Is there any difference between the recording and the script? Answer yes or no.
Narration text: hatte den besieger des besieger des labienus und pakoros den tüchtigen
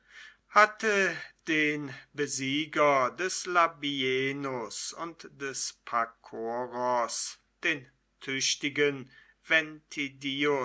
yes